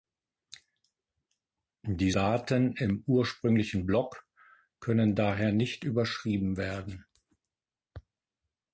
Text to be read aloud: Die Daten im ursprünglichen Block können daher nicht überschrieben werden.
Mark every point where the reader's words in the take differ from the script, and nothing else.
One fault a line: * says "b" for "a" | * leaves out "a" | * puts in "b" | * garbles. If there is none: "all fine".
all fine